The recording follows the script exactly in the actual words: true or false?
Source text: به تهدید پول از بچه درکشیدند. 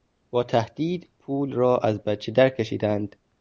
false